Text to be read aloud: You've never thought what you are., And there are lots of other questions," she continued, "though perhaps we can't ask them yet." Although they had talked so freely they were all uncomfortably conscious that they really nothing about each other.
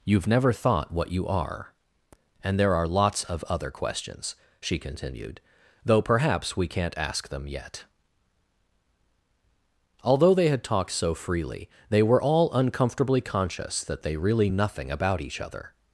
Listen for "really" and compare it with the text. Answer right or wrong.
right